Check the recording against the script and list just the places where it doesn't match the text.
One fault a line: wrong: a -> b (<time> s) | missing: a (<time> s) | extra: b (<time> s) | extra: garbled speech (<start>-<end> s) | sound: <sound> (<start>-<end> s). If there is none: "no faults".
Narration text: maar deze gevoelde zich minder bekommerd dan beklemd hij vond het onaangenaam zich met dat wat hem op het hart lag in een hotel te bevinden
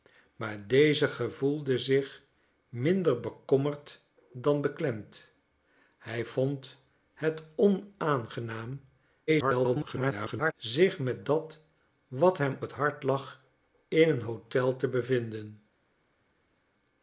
extra: garbled speech (9.3-10.5 s)
missing: op (12.6 s)